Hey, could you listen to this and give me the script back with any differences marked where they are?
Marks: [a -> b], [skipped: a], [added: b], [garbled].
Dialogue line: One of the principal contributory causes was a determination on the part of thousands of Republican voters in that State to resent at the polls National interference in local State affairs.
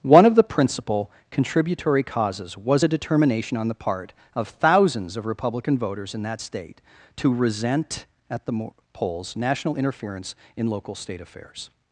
One of the principal contributory causes was a determination on the part of thousands of Republican voters in that State to resent at the polls National interference in local State affairs.